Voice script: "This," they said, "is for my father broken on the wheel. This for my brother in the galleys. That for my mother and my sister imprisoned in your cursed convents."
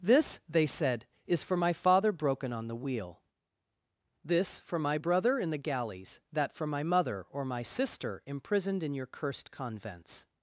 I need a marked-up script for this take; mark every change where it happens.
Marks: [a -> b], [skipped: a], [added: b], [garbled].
"This," they said, "is for my father broken on the wheel. This for my brother in the galleys. That for my mother [and -> or] my sister imprisoned in your cursed convents."